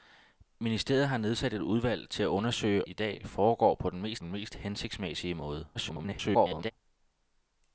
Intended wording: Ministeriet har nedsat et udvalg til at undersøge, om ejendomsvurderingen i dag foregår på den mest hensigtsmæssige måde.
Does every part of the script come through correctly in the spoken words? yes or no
no